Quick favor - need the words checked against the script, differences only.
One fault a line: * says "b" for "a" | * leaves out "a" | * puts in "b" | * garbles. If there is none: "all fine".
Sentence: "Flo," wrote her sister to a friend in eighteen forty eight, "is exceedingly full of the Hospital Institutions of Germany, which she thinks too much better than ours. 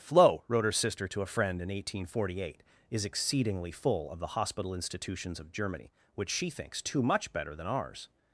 all fine